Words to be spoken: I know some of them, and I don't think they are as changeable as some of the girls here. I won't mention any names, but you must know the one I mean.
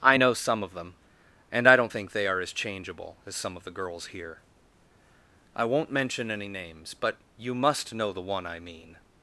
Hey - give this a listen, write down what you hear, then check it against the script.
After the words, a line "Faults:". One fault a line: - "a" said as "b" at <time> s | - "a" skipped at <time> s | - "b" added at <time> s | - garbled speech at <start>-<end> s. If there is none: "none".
I know some of them, and I don't think they are as changeable as some of the girls here. I won't mention any names, but you must know the one I mean.
Faults:
none